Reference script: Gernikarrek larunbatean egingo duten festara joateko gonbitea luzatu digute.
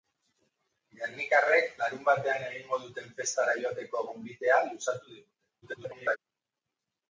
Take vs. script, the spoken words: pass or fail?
fail